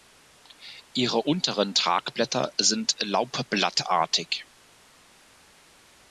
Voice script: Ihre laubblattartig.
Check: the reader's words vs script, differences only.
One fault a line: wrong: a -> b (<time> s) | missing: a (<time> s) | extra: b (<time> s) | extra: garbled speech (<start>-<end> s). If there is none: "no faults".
extra: unteren Tragblätter sind (1.2 s)